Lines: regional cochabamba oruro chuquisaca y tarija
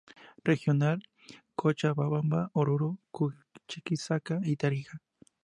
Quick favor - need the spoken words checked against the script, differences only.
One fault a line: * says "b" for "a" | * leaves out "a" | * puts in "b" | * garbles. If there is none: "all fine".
all fine